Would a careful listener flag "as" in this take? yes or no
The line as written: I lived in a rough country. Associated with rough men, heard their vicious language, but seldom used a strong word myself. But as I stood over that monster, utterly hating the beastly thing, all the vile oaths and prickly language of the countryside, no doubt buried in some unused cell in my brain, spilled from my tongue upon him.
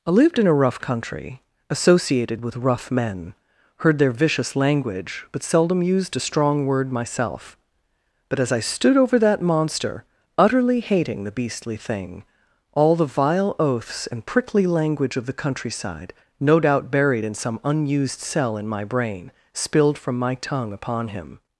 no